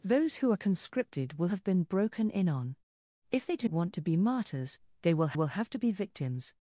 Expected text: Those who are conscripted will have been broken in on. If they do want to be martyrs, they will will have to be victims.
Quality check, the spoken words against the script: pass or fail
pass